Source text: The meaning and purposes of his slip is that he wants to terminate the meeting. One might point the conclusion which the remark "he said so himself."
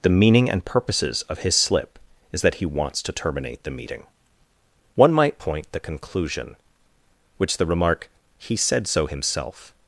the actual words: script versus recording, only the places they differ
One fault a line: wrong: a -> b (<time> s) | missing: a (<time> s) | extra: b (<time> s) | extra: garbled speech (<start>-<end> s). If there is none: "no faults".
no faults